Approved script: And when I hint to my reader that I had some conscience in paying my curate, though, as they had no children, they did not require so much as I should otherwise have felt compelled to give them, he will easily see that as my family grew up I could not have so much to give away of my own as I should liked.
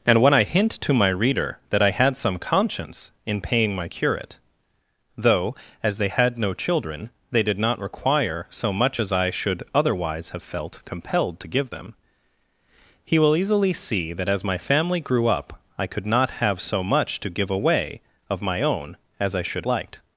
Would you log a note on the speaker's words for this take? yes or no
no